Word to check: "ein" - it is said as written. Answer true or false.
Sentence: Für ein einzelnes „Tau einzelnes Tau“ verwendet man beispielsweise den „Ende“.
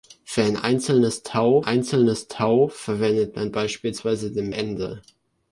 true